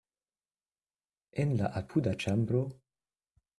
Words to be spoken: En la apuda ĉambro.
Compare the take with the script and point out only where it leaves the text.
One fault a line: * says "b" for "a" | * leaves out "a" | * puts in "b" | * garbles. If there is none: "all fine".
all fine